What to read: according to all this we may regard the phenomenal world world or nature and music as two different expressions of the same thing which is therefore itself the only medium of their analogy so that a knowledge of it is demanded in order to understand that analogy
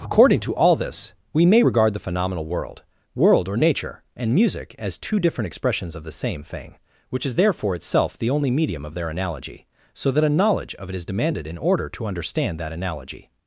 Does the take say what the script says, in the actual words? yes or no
yes